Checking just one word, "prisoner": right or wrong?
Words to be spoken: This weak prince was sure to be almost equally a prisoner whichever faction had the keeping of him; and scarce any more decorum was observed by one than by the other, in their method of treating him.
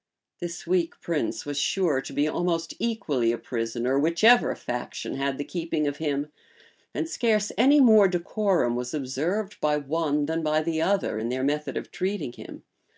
right